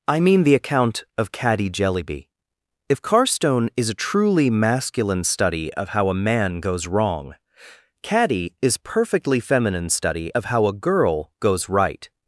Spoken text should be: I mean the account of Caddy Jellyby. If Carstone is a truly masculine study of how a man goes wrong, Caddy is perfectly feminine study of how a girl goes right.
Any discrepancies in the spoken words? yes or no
no